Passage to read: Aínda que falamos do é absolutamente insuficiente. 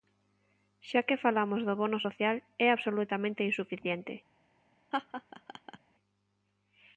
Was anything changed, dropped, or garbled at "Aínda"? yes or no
yes